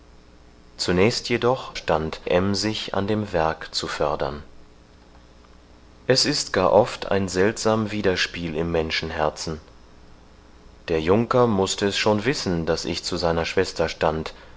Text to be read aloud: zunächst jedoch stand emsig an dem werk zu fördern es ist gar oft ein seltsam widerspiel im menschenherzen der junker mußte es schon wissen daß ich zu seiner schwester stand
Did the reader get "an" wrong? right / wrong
right